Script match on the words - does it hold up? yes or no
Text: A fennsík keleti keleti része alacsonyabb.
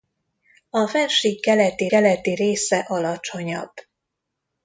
yes